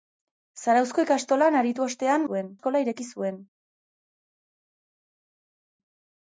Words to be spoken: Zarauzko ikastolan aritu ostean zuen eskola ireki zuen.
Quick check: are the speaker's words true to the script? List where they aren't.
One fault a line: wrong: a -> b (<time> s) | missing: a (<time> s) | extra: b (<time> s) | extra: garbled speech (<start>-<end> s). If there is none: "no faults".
no faults